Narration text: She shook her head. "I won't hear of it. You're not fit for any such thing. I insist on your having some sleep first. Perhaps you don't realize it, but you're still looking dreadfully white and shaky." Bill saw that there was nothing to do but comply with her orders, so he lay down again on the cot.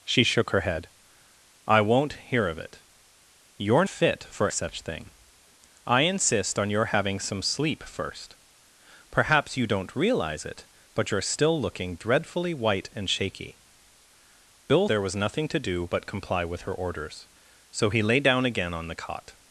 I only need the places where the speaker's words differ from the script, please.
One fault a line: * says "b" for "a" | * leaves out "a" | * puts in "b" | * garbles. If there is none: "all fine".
* leaves out "not"
* leaves out "any"
* leaves out "saw that"